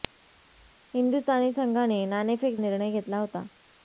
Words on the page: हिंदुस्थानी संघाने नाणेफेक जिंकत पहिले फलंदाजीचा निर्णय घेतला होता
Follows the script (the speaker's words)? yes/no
no